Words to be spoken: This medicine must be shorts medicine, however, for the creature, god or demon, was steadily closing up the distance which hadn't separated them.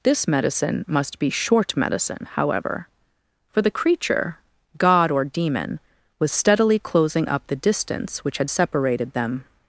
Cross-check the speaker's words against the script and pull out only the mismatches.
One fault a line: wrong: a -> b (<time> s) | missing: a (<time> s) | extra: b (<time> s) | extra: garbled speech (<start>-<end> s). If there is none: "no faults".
wrong: shorts -> short (1.3 s)
wrong: hadn't -> had (8.4 s)